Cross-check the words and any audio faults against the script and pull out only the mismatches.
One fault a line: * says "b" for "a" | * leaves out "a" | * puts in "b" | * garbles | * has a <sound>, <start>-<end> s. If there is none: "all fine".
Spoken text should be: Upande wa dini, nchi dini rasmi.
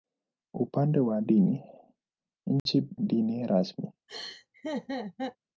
* has a dropout, 2.6-2.7 s
* has a laugh, 4.1-5.4 s